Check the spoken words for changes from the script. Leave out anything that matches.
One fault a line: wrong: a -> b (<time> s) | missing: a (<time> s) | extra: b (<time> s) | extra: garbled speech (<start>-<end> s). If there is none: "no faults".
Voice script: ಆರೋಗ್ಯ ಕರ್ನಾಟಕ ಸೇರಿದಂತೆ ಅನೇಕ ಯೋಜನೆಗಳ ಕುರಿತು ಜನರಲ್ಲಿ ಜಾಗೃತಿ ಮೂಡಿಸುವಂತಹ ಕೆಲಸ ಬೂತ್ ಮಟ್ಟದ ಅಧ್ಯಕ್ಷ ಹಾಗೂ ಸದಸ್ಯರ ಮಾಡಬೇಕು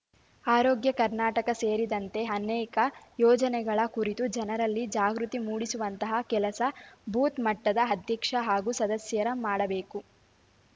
no faults